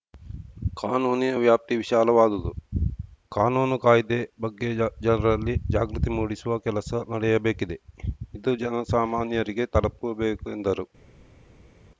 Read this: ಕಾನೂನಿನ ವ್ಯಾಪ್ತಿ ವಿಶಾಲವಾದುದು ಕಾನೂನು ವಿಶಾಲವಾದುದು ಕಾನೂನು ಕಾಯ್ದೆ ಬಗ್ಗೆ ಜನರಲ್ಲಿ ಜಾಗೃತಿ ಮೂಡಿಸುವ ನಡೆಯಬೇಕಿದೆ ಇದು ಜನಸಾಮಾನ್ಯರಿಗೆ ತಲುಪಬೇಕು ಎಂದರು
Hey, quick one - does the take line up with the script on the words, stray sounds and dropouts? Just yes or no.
no